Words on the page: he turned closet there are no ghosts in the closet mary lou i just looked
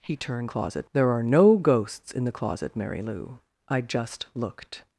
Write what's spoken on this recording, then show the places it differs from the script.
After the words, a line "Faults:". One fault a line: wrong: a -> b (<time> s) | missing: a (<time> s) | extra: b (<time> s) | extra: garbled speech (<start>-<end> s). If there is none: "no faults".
he turned closet there are no ghosts in the closet mary lou i just looked
Faults:
no faults